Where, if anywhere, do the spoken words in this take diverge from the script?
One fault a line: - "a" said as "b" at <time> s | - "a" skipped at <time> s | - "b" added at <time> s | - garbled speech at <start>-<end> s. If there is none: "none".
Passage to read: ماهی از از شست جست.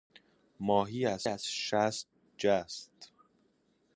none